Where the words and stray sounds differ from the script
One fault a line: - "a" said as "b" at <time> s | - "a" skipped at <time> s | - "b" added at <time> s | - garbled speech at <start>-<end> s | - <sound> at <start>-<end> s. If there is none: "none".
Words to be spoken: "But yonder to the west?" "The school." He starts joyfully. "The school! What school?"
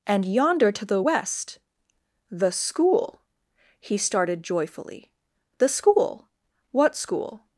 - "But" said as "And" at 0.1 s
- "starts" said as "started" at 4.0 s